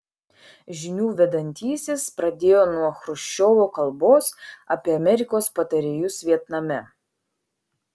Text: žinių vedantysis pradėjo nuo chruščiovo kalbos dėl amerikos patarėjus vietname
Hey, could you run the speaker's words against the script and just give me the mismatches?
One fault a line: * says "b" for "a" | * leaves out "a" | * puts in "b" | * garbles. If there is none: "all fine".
* says "apie" for "dėl"